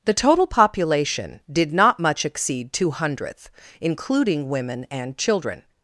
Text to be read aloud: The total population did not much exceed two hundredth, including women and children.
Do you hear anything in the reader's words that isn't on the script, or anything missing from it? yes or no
no